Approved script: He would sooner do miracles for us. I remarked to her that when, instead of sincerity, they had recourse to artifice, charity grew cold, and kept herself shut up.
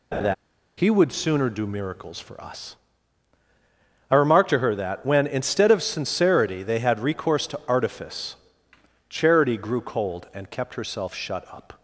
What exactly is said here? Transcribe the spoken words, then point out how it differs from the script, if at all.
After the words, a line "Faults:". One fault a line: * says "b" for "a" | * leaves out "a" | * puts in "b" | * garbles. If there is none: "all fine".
He would sooner do miracles for us. I remarked to her that when, instead of sincerity, they had recourse to artifice, charity grew cold, and kept herself shut up.
Faults:
all fine